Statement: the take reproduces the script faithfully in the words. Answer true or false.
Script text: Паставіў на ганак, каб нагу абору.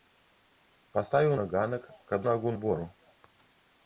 true